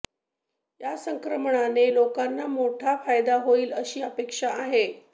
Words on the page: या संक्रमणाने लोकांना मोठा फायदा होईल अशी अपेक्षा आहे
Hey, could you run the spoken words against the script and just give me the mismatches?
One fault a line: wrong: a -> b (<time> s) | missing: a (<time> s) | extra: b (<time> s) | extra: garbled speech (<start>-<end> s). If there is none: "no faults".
no faults